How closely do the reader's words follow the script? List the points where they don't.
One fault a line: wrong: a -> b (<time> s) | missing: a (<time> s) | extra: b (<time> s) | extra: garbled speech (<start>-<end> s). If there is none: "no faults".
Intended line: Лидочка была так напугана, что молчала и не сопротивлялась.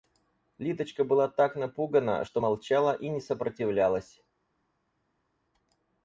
no faults